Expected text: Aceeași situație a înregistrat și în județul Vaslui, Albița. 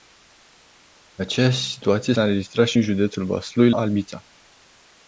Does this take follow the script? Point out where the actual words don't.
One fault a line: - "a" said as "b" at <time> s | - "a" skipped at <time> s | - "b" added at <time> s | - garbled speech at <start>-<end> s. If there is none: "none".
none